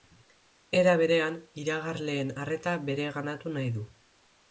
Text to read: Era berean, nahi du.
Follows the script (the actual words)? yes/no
no